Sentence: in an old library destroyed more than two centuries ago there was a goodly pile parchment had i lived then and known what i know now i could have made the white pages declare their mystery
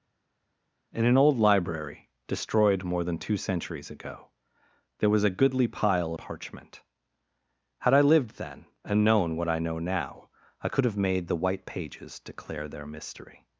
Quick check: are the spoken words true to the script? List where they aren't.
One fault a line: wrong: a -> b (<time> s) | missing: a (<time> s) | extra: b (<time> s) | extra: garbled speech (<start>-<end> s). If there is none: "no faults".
no faults